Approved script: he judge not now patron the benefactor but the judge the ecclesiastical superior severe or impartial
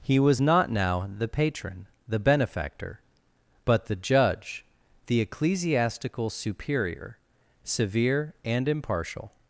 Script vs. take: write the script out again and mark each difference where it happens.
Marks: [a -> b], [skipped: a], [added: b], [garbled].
he [judge -> was] not now [added: the] patron the benefactor but the judge the ecclesiastical superior severe [or -> and] impartial